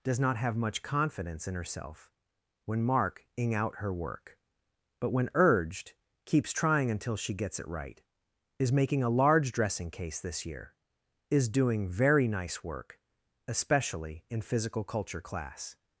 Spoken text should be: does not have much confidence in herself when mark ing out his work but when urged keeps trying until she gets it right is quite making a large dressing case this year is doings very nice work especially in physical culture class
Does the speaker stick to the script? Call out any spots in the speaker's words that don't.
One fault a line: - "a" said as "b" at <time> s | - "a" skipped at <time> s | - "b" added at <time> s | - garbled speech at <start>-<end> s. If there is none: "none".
- "his" said as "her" at 3.8 s
- "quite" skipped at 8.7 s
- "doings" said as "doing" at 11.5 s